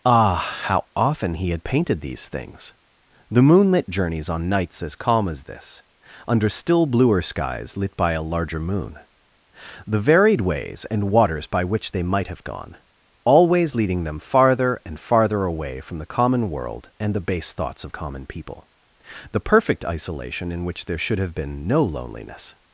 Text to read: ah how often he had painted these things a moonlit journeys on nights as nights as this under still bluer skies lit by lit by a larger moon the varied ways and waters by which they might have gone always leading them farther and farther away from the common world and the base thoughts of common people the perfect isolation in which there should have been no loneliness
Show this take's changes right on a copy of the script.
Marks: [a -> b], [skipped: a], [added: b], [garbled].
ah how often he had painted these things [a -> the] moonlit journeys on nights as [nights -> calm] as this under still bluer skies lit by [skipped: lit by] a larger moon the varied ways and waters by which they might have gone always leading them farther and farther away from the common world and the base thoughts of common people the perfect isolation in which there should have been no loneliness